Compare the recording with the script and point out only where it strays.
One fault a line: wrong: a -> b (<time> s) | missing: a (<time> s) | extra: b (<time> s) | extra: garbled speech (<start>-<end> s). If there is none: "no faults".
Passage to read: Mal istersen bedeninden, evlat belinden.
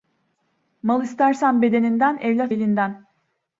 no faults